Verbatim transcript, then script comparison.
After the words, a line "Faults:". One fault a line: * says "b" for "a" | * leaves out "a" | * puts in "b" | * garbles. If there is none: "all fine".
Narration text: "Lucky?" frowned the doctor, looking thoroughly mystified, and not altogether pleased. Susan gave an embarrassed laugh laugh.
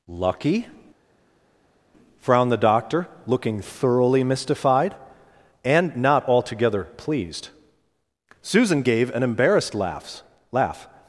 "Lucky?" frowned the doctor, looking thoroughly mystified, and not altogether pleased. Susan gave an embarrassed laugh laugh.
Faults:
all fine